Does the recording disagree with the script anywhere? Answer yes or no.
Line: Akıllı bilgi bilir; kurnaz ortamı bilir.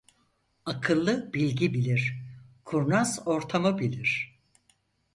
no